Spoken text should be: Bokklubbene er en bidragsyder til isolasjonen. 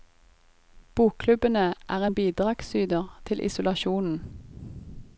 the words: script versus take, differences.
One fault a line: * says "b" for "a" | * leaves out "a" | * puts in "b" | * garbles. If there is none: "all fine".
all fine